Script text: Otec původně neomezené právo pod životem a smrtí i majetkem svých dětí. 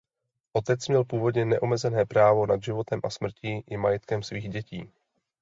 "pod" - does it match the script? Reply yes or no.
no